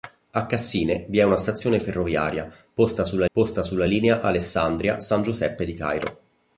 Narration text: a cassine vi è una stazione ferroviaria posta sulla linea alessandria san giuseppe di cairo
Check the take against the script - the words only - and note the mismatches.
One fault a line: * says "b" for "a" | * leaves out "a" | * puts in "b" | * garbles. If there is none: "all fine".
* puts in "posta sulla"